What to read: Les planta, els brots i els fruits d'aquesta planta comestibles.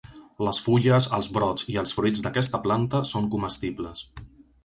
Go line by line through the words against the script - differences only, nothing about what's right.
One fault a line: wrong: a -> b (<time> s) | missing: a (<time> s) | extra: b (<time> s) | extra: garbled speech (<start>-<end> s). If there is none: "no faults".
wrong: planta -> fulles (0.7 s)
extra: són (3.1 s)